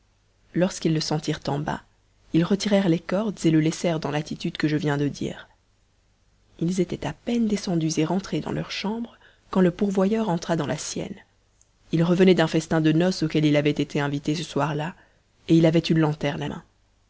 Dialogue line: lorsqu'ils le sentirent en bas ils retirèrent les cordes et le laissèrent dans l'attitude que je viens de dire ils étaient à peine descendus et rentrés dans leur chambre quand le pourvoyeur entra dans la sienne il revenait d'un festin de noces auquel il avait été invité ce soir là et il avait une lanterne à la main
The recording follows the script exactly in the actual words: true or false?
false